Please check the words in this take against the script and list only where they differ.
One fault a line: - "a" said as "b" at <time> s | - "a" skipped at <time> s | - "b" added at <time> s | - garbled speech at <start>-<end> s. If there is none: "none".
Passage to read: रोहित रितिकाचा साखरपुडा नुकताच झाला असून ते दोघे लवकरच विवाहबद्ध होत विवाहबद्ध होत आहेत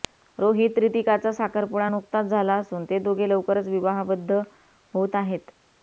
- "विवाहबद्ध होत" skipped at 5.1 s